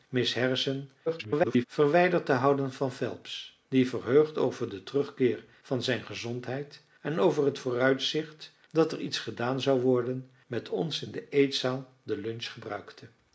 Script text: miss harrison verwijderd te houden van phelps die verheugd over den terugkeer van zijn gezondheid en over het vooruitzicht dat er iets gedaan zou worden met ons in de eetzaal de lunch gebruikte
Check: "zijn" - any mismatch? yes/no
no